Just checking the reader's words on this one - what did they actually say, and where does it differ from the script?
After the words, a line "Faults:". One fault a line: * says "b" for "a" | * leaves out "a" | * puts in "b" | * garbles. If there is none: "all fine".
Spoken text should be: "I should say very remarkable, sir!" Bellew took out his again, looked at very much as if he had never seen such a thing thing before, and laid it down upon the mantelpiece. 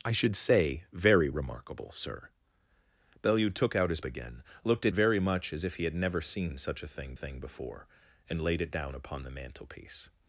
"I should say very remarkable, sir!" Bellew took out his again, looked at very much as if he had never seen such a thing thing before, and laid it down upon the mantelpiece.
Faults:
all fine